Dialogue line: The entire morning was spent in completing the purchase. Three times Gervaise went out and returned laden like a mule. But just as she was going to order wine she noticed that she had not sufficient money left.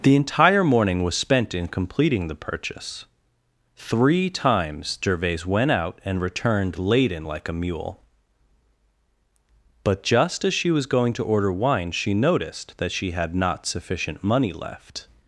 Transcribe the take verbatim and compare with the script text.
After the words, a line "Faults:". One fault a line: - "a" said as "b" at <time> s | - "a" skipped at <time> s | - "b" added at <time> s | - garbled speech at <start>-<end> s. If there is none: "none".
The entire morning was spent in completing the purchase. Three times Gervaise went out and returned laden like a mule. But just as she was going to order wine she noticed that she had not sufficient money left.
Faults:
none